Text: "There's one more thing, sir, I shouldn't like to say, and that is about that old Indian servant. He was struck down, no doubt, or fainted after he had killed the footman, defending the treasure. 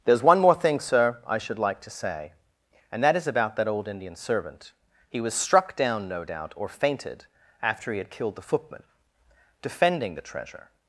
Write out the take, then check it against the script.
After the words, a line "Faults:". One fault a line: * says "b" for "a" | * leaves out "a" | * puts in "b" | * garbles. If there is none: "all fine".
"There's one more thing, sir, I should like to say, and that is about that old Indian servant. He was struck down, no doubt, or fainted after he had killed the footman, defending the treasure.
Faults:
* says "should" for "shouldn't"